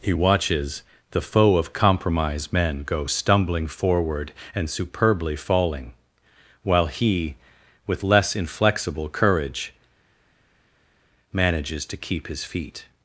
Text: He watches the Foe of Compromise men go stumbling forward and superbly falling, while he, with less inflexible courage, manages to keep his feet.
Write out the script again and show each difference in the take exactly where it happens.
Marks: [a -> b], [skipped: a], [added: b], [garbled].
He watches the Foe of Compromise men go stumbling forward and superbly falling, while he, with less inflexible courage, manages to keep his feet.